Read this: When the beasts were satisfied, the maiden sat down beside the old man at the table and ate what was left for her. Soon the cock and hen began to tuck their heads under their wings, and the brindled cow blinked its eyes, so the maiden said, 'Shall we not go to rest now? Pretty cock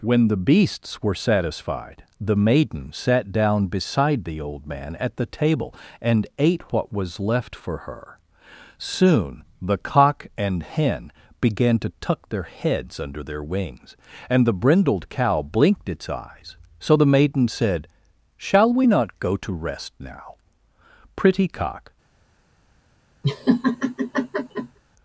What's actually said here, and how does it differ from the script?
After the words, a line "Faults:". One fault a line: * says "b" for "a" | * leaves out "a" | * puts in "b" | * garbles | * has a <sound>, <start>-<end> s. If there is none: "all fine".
When the beasts were satisfied, the maiden sat down beside the old man at the table and ate what was left for her. Soon the cock and hen began to tuck their heads under their wings, and the brindled cow blinked its eyes, so the maiden said, 'Shall we not go to rest now? Pretty cock
Faults:
* has a laugh, 23.2-24.8 s